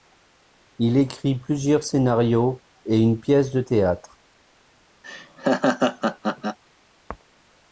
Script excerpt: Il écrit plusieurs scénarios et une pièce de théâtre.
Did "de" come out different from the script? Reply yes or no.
no